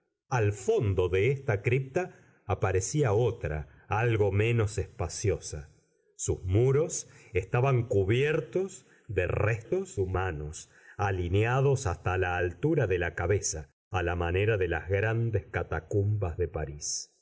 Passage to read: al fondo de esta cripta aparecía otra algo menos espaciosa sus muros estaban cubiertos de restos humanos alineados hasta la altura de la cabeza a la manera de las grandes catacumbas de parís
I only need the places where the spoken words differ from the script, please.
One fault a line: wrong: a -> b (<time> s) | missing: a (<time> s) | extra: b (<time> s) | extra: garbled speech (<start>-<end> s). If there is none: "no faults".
no faults